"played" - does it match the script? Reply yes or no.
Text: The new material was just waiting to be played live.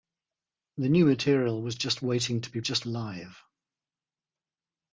no